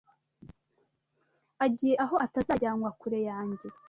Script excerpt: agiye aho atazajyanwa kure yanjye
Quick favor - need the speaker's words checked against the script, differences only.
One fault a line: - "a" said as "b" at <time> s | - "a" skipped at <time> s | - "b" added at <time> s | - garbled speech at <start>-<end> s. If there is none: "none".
none